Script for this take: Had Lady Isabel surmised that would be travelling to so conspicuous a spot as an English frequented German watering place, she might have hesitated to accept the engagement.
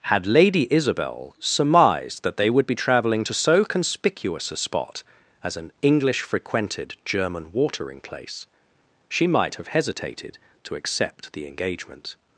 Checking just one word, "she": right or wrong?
right